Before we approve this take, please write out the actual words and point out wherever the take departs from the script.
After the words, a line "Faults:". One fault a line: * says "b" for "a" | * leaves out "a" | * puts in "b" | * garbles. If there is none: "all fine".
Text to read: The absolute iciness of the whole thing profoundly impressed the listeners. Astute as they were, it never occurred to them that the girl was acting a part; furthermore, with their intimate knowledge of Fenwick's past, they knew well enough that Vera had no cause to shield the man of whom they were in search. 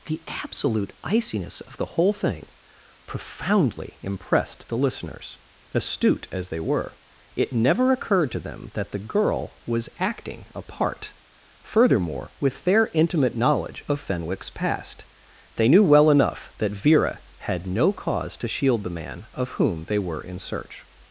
The absolute iciness of the whole thing profoundly impressed the listeners. Astute as they were, it never occurred to them that the girl was acting a part; furthermore, with their intimate knowledge of Fenwick's past, they knew well enough that Vera had no cause to shield the man of whom they were in search.
Faults:
all fine